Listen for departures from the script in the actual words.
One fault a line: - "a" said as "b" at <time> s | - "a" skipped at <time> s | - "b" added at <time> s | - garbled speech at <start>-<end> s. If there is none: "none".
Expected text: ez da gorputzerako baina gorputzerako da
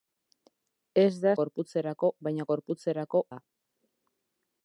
none